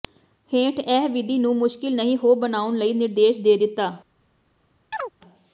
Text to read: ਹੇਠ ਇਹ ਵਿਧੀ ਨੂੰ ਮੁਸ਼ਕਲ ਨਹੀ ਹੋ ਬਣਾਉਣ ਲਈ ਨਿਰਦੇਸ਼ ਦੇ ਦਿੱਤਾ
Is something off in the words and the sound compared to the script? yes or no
yes